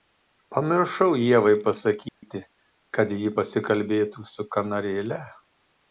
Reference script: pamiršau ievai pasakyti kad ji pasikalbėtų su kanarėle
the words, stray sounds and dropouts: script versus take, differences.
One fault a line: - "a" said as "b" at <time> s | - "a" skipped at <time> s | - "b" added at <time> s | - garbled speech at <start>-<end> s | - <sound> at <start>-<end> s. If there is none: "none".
- dropout at 2.1-2.2 s